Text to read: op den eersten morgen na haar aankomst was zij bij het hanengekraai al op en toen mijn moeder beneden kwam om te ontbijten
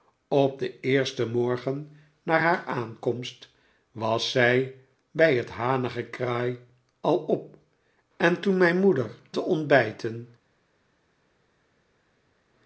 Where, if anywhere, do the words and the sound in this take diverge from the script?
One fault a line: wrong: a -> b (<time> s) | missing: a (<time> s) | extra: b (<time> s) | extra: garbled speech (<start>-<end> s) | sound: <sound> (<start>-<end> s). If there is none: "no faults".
missing: beneden kwam om (9.1 s)